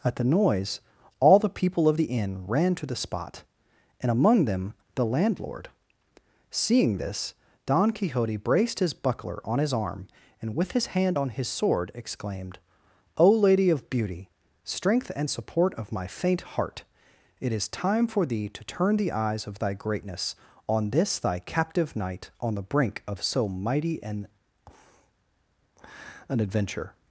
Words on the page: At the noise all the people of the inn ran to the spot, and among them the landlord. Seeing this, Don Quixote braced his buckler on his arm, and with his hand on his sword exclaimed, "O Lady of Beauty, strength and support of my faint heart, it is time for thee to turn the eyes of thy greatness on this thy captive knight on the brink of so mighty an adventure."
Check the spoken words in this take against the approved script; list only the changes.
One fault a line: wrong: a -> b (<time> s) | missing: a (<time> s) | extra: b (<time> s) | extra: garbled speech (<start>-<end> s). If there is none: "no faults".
extra: an (26.3 s)